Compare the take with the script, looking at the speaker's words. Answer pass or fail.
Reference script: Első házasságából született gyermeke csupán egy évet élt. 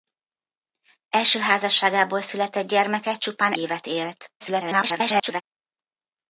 fail